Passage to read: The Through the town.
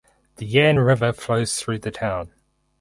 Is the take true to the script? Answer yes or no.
no